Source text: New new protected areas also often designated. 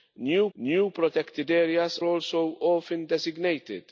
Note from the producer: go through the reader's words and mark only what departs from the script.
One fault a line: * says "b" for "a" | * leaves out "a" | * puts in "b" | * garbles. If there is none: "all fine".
all fine